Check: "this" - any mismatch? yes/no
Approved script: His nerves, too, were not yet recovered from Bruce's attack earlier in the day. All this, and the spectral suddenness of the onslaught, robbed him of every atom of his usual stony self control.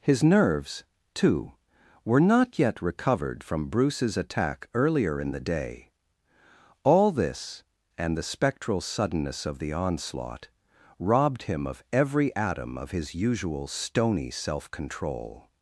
no